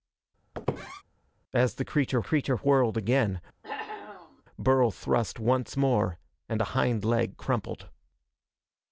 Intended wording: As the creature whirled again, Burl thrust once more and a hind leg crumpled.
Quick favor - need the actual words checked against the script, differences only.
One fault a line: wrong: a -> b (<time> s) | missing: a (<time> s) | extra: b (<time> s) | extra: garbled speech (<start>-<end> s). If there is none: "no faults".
extra: creature (2.2 s)